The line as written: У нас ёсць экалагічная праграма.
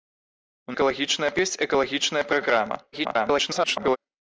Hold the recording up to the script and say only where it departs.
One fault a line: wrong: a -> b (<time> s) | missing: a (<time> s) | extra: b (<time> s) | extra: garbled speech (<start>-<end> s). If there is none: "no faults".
wrong: нас -> экалагічная (0.8 s)
extra: garbled speech (2.9-4.0 s)